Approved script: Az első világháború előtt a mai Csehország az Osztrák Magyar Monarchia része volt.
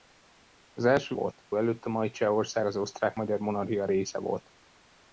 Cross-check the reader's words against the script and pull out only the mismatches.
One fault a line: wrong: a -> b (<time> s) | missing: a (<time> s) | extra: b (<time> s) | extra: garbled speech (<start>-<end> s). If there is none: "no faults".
wrong: világháború -> volt (1.1 s)